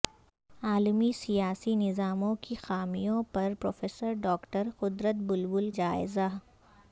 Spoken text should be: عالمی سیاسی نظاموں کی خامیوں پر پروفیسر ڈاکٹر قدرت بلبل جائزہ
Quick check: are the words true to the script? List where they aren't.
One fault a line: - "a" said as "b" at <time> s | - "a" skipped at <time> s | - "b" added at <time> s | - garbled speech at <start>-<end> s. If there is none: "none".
none